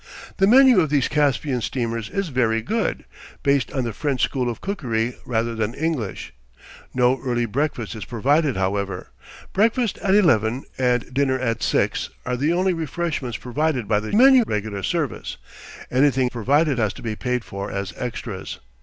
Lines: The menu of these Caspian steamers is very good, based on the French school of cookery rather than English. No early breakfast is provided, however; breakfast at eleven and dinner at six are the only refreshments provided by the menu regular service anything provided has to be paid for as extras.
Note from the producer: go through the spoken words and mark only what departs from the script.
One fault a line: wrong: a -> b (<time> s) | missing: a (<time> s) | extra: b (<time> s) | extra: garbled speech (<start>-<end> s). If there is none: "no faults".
no faults